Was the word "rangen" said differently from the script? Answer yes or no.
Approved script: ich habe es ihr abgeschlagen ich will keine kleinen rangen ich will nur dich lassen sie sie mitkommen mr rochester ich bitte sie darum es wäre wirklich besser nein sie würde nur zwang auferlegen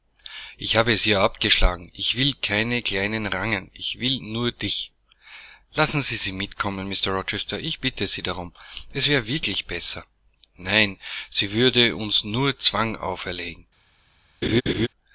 no